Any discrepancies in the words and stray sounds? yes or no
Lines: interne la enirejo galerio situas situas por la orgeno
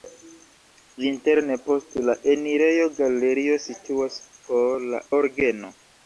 yes